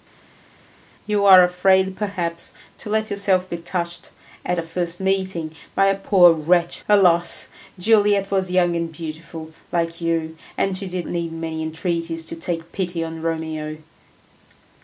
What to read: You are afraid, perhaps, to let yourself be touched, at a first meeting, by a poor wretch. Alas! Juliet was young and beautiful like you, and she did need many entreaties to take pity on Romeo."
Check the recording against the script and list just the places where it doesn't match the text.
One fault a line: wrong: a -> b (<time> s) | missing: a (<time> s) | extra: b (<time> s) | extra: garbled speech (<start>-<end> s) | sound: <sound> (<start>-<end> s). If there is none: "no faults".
no faults